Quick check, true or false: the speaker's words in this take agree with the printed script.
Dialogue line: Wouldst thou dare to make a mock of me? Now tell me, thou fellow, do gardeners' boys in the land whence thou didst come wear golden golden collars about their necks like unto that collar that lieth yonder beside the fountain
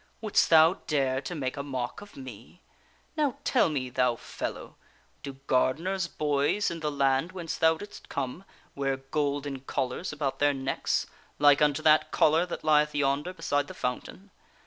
false